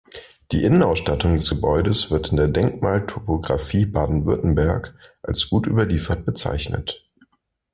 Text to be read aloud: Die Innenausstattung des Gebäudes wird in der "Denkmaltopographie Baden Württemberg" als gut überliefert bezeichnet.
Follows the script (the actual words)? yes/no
yes